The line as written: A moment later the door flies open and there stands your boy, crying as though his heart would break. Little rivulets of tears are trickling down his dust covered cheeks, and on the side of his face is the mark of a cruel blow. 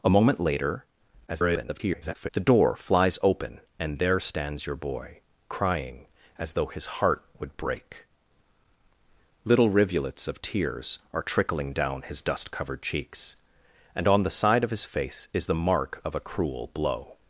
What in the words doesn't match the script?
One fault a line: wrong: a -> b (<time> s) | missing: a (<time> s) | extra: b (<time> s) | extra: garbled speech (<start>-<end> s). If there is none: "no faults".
extra: garbled speech (1.3-2.3 s)